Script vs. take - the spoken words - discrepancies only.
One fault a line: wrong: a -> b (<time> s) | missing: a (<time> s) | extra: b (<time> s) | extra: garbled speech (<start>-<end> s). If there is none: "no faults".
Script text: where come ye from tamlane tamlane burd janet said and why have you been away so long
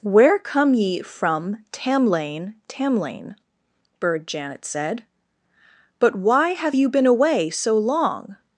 wrong: and -> but (6.0 s)